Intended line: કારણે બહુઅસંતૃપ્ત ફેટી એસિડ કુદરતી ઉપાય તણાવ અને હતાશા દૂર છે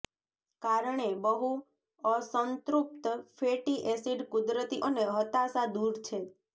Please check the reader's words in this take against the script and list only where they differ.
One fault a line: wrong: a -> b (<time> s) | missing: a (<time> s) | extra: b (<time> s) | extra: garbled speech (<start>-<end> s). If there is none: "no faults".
missing: ઉપાય તણાવ (4.8 s)